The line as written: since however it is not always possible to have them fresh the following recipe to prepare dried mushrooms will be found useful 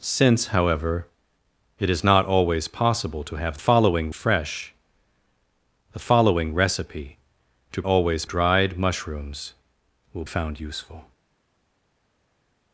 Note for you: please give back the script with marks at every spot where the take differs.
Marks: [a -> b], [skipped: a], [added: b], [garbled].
since however it is not always possible to have [them -> following] fresh the following recipe to [prepare -> always] dried mushrooms will [skipped: be] found useful